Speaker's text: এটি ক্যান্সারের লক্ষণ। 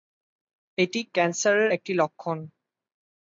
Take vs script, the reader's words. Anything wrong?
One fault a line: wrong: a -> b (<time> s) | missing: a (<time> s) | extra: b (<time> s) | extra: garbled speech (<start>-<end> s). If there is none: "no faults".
extra: একটি (1.7 s)